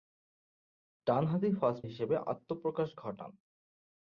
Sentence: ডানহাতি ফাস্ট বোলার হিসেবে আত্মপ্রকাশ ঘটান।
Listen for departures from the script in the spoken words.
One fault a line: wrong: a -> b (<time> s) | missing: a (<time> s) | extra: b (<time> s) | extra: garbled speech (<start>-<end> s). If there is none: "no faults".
missing: বোলার (1.8 s)